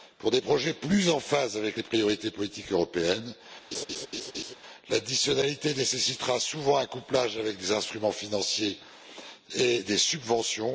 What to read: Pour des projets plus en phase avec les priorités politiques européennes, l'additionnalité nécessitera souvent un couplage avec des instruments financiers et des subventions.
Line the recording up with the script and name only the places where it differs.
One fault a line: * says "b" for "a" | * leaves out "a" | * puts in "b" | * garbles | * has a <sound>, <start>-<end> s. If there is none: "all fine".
* has a laugh, 3.7-4.5 s